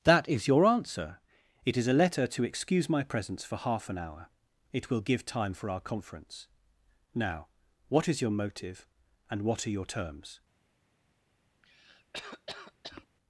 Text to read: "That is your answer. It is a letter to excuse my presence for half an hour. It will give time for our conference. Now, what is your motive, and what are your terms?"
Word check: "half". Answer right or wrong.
right